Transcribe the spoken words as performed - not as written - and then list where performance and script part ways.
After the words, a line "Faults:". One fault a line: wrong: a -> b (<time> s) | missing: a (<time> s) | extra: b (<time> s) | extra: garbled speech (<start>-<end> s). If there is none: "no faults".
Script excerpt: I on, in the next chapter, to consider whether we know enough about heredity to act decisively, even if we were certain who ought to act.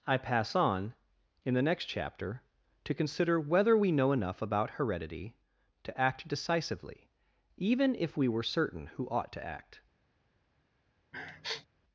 I pass on, in the next chapter, to consider whether we know enough about heredity to act decisively, even if we were certain who ought to act.
Faults:
extra: pass (0.2 s)